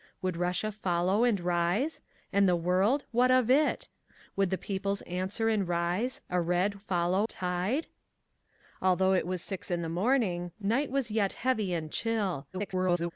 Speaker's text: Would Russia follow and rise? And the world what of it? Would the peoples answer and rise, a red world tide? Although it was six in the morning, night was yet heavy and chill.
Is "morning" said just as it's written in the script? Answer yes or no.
yes